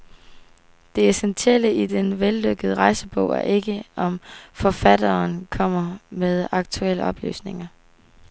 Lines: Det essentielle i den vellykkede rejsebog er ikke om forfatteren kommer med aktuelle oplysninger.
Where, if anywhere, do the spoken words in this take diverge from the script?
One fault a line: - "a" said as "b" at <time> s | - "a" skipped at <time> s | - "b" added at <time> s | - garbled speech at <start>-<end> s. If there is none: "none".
none